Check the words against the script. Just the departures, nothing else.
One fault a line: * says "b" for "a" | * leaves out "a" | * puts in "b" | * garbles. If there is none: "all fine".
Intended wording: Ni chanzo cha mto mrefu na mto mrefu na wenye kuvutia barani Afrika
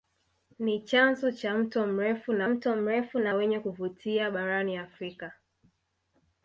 all fine